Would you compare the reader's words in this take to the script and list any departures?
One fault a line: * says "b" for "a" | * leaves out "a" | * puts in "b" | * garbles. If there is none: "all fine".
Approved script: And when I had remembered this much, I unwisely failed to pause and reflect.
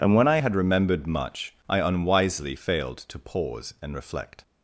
* leaves out "this"